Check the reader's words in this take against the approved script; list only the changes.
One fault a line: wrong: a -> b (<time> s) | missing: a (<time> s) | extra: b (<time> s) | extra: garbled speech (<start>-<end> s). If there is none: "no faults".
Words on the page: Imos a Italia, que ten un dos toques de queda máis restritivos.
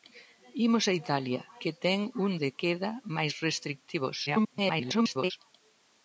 missing: dos toques (2.3 s)
extra: garbled speech (4.3-5.3 s)